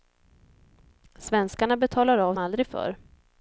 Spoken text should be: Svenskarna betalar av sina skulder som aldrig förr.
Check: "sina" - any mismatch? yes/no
yes